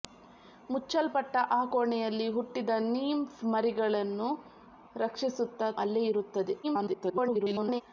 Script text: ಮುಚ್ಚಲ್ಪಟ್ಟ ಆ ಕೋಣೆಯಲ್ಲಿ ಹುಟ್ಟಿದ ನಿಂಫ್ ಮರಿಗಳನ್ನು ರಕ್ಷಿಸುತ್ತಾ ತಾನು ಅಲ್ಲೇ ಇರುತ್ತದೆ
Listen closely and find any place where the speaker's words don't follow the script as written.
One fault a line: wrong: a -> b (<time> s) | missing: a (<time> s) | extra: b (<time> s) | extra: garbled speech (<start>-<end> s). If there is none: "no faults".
missing: ತಾನು (5.7 s)
extra: garbled speech (6.6-7.8 s)